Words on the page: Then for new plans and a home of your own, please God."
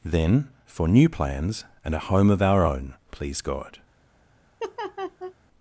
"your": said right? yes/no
no